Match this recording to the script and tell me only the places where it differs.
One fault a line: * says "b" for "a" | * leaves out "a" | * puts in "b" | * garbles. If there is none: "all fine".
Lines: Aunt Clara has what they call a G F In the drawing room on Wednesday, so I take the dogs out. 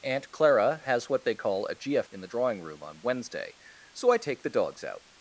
all fine